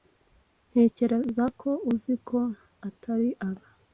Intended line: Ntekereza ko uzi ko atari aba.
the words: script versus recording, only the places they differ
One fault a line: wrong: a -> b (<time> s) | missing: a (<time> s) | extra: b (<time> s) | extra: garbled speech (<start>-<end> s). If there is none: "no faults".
no faults